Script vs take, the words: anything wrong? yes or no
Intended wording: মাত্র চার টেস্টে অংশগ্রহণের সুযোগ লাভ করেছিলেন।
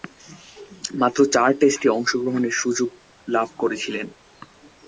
no